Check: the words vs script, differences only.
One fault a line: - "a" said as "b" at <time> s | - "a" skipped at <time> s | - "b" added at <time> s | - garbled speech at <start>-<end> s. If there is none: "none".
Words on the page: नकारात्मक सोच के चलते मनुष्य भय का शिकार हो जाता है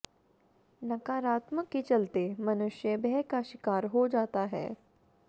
- "सोच" skipped at 1.7 s